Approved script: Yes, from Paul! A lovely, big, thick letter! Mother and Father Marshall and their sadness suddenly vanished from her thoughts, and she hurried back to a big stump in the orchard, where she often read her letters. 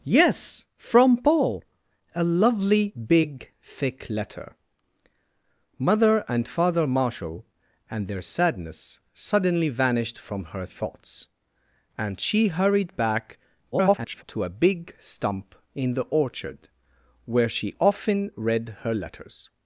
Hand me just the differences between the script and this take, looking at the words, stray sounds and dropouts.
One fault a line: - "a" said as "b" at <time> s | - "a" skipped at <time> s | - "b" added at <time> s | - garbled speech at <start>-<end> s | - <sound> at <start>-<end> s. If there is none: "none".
- garbled speech at 13.7-14.2 s